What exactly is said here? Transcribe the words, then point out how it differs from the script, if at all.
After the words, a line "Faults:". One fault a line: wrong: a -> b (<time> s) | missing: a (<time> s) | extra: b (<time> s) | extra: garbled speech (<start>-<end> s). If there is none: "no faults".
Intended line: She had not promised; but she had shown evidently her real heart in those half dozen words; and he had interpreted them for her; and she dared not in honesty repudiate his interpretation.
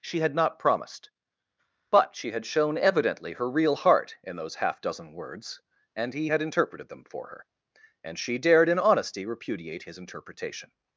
She had not promised; but she had shown evidently her real heart in those half dozen words; and he had interpreted them for her; and she dared in honesty repudiate his interpretation.
Faults:
missing: not (8.7 s)